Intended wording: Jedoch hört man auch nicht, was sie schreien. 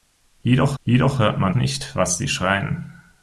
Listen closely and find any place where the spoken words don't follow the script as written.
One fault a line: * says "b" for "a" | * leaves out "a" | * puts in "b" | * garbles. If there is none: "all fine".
* puts in "jedoch"
* leaves out "auch"